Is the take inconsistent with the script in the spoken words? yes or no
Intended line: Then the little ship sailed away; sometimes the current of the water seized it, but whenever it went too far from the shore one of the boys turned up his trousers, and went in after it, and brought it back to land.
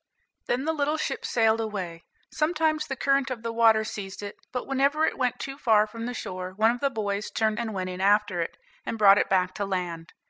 yes